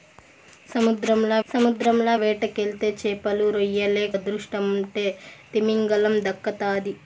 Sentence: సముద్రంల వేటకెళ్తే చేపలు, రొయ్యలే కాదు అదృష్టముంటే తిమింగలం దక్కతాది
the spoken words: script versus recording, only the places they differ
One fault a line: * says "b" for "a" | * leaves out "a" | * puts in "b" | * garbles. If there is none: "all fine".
* puts in "సముద్రంల"
* leaves out "కాదు"